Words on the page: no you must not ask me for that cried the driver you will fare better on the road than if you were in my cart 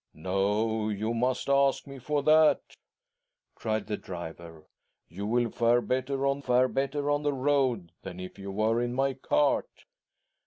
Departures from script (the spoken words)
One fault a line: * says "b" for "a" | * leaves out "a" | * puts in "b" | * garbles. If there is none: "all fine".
* leaves out "not"
* puts in "fare better on"